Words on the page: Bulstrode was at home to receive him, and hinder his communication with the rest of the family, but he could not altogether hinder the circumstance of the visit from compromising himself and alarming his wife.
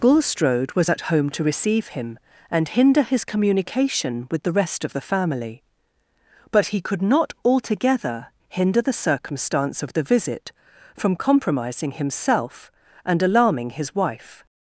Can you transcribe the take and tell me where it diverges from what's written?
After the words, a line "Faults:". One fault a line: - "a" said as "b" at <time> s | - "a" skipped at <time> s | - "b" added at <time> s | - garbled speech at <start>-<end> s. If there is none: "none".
Bulstrode was at home to receive him, and hinder his communication with the rest of the family, but he could not altogether hinder the circumstance of the visit from compromising himself and alarming his wife.
Faults:
none